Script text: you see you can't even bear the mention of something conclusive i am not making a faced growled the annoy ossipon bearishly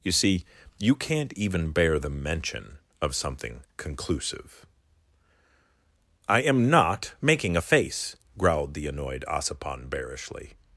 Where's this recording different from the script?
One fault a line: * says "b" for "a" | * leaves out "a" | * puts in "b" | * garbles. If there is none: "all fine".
* says "face" for "faced"
* says "annoyed" for "annoy"